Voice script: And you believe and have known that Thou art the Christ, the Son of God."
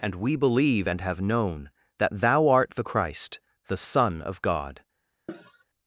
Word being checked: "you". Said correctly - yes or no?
no